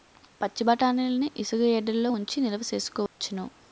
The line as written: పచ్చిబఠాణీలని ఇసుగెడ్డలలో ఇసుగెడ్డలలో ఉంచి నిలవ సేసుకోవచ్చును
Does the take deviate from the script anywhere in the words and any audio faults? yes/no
yes